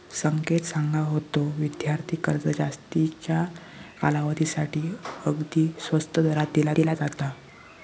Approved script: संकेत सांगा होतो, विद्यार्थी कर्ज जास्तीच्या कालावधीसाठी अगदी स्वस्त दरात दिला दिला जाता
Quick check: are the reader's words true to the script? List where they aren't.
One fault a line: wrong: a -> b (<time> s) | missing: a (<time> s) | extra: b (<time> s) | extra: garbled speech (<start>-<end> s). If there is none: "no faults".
no faults